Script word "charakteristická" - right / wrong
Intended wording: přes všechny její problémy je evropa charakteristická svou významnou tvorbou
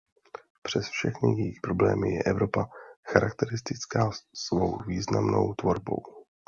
right